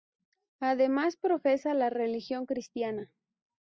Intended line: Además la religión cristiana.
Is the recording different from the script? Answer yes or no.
yes